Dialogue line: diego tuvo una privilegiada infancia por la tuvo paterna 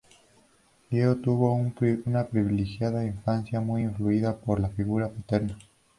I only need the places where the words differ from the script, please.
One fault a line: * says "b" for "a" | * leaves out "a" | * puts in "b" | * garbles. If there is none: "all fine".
* puts in "muy influida"
* says "figura" for "tuvo"